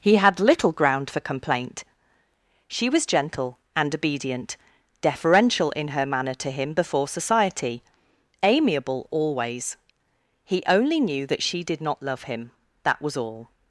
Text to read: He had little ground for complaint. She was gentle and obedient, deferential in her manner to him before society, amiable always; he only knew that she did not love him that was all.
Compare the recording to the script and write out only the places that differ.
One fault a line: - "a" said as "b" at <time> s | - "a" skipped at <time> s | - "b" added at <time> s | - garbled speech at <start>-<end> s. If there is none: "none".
none